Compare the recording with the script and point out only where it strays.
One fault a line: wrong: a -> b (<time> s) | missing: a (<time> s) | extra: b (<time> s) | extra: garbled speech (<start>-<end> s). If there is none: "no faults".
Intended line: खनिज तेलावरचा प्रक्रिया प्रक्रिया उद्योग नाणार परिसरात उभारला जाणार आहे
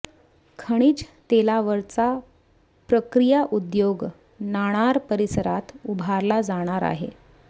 missing: प्रक्रिया (3.4 s)